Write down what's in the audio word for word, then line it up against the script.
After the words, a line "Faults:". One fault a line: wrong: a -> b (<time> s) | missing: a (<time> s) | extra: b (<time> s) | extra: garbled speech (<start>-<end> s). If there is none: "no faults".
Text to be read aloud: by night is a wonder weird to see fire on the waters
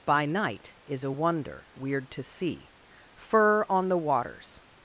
by night is a wonder weird to see fur on the waters
Faults:
wrong: fire -> fur (3.1 s)